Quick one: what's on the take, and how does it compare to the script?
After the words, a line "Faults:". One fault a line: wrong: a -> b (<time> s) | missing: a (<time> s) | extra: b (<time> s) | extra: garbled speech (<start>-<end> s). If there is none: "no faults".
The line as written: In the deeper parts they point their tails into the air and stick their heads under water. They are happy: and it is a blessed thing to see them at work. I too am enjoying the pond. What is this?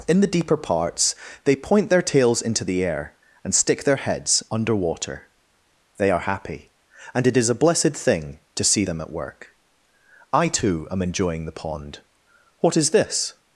In the deeper parts they point their tails into the air and stick their heads under water. They are happy: and it is a blessed thing to see them at work. I too am enjoying the pond. What is this?
Faults:
no faults